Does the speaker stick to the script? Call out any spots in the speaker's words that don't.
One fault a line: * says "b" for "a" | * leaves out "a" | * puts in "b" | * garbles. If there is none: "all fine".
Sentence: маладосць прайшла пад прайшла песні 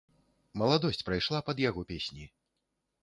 * says "яго" for "прайшла"